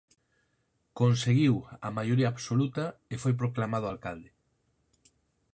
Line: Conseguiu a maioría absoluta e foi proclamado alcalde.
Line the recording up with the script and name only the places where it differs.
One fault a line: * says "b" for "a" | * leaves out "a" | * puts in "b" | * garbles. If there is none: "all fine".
all fine